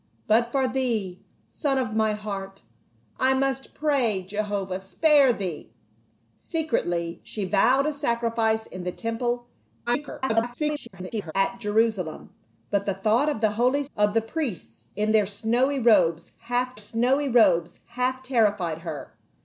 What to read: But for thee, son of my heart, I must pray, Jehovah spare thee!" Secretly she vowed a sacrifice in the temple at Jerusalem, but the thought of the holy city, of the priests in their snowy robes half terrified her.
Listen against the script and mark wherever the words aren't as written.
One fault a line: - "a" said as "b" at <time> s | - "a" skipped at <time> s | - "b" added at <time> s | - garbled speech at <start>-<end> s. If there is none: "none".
- garbled speech at 9.9-11.3 s
- "city" skipped at 13.8 s
- "snowy robes half" added at 16.8 s